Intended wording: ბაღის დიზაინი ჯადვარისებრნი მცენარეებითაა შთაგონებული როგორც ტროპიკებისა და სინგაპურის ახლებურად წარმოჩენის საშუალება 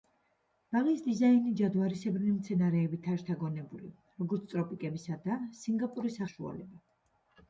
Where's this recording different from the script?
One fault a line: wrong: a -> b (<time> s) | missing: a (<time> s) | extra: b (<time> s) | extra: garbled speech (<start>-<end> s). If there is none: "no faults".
missing: ახლებურად წარმოჩენის (6.2 s)